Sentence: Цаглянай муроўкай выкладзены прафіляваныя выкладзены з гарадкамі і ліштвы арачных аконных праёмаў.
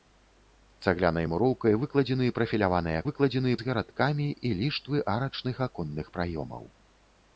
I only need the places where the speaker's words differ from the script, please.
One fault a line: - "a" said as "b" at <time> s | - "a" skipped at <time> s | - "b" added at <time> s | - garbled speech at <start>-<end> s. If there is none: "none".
none